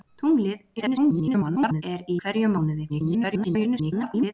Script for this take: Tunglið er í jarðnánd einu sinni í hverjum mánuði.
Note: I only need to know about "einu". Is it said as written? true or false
false